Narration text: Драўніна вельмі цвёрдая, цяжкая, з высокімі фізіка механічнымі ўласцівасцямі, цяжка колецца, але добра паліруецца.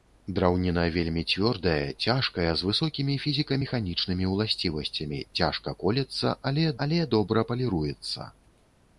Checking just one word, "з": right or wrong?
right